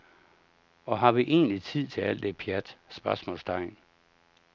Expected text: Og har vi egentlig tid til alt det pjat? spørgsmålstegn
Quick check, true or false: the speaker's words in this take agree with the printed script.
true